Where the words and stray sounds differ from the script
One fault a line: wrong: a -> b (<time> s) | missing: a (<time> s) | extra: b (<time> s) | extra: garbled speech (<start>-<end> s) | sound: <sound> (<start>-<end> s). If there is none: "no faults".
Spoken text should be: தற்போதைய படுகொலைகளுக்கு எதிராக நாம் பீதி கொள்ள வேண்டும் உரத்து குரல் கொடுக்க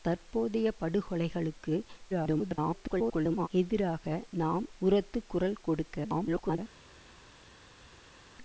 extra: garbled speech (2.1-3.5 s)
missing: பீதி கொள்ள வேண்டும் (4.7 s)
extra: garbled speech (6.0-6.6 s)